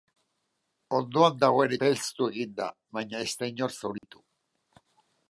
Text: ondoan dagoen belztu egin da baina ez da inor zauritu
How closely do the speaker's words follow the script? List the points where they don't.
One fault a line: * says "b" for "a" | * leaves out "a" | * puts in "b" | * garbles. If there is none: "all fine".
all fine